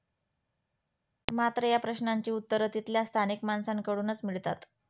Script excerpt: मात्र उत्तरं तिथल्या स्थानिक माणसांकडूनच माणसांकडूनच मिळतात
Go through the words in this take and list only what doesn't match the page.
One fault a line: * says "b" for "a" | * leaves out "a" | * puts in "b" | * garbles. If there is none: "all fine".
* puts in "या प्रश्नांची"
* leaves out "माणसांकडूनच"